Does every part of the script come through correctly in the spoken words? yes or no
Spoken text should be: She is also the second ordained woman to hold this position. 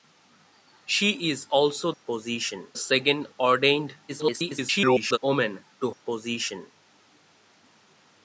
no